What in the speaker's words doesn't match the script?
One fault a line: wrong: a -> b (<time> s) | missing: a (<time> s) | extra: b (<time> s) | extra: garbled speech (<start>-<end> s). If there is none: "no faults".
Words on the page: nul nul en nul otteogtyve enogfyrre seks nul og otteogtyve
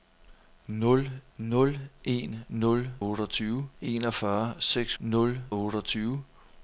no faults